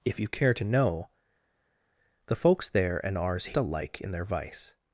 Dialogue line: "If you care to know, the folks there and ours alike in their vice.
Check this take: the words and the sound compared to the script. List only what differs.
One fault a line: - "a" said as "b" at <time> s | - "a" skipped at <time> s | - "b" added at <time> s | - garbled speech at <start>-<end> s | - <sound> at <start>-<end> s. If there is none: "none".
none